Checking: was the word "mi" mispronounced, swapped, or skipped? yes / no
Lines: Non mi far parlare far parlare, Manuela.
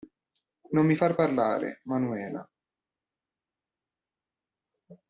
no